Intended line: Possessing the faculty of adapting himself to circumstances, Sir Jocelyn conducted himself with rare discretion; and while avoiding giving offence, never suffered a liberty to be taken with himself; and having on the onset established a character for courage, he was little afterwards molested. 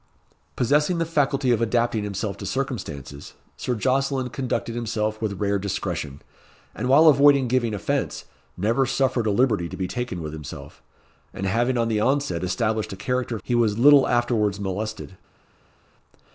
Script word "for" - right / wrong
wrong